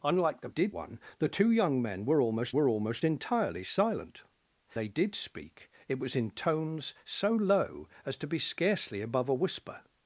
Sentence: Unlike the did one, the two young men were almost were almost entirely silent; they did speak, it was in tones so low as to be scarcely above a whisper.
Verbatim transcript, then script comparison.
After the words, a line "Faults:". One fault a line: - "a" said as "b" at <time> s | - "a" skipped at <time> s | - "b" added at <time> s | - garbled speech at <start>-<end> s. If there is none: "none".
Unlike the did one, the two young men were almost were almost entirely silent; they did speak, it was in tones so low as to be scarcely above a whisper.
Faults:
none